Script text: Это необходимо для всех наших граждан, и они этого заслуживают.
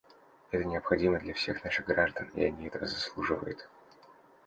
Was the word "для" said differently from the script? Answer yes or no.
no